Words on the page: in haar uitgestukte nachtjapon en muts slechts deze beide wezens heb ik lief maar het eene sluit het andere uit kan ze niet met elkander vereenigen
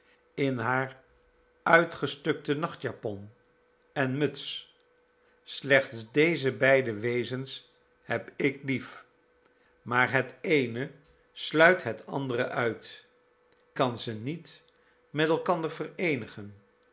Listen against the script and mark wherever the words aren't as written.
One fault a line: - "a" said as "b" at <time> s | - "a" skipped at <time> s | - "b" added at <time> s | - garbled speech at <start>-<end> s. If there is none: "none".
none